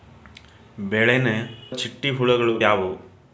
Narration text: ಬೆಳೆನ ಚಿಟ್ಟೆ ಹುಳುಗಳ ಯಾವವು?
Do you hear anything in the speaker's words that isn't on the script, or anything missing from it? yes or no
no